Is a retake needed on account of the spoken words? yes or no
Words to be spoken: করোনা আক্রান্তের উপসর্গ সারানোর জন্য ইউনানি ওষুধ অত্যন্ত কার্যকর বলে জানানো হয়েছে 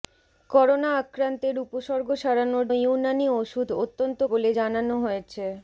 yes